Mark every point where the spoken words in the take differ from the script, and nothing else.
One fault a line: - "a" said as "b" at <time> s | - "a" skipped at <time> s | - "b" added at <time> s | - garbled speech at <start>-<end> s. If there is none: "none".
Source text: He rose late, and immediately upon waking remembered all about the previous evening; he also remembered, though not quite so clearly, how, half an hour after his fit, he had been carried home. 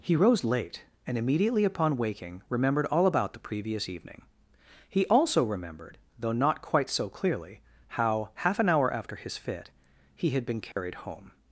none